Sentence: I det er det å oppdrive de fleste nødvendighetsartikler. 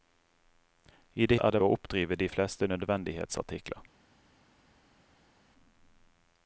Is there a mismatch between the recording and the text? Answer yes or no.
no